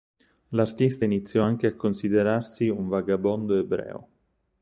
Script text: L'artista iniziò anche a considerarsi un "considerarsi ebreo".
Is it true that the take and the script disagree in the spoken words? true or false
true